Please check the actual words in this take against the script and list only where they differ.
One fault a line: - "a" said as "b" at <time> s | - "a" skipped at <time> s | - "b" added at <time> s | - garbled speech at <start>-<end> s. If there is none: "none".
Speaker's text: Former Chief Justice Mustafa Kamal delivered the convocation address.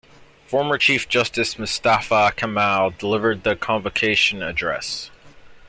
none